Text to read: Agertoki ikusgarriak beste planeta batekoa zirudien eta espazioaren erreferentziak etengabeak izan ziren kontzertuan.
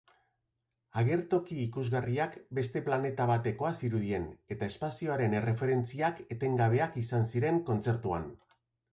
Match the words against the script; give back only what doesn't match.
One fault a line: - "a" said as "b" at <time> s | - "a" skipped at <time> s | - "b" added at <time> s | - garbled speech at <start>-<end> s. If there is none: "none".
none